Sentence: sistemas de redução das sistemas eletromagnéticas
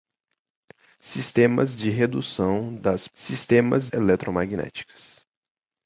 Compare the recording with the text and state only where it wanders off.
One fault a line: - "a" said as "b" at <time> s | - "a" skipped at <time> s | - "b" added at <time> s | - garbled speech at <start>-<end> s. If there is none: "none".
none